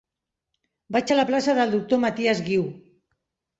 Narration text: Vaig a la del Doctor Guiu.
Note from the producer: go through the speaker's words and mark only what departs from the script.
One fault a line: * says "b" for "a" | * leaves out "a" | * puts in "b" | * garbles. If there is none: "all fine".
* puts in "plaça"
* puts in "Matias"